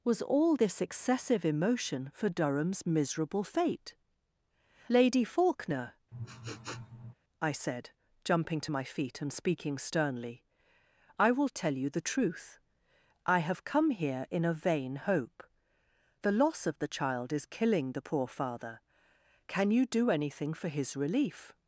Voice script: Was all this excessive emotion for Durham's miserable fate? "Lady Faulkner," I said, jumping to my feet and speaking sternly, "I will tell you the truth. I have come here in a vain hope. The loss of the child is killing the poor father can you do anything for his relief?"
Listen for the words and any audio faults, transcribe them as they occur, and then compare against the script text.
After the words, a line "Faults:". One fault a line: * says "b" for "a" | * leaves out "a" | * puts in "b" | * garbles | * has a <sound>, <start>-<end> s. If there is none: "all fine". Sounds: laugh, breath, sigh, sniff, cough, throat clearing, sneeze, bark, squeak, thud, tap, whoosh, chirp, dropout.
Was all this excessive emotion for Durham's miserable fate? "Lady Faulkner," I said, jumping to my feet and speaking sternly, "I will tell you the truth. I have come here in a vain hope. The loss of the child is killing the poor father can you do anything for his relief?"
Faults:
* has a sniff, 6.1-7.1 s